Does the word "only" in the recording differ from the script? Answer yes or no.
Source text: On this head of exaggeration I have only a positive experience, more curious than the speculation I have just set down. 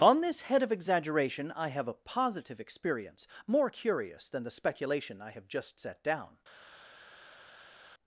yes